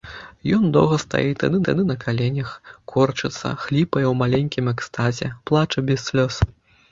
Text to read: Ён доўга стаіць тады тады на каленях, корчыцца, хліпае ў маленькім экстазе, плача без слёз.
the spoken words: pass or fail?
pass